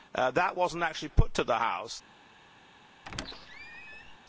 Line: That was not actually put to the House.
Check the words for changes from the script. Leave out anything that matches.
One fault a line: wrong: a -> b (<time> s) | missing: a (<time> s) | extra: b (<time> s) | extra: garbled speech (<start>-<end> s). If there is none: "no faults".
no faults